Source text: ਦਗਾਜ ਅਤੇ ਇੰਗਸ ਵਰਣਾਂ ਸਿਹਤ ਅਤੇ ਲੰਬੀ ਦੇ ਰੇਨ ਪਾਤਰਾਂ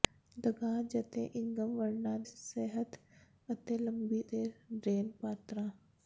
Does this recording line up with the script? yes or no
yes